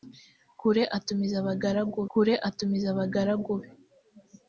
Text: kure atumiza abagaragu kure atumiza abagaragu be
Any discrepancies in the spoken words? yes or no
no